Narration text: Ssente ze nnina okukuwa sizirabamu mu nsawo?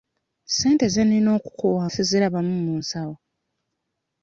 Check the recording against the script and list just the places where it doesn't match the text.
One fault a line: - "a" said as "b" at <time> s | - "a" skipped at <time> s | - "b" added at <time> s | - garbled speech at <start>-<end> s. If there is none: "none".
none